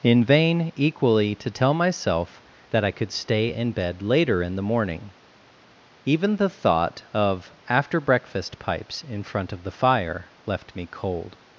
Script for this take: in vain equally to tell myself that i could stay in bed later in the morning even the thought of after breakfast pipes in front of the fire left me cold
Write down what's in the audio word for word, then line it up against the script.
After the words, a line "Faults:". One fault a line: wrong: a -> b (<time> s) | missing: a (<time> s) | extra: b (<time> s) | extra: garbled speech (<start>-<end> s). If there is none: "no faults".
in vain equally to tell myself that i could stay in bed later in the morning even the thought of after breakfast pipes in front of the fire left me cold
Faults:
no faults